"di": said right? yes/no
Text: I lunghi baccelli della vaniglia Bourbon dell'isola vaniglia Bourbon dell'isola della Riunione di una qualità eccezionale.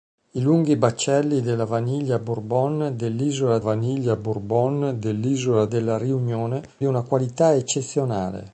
yes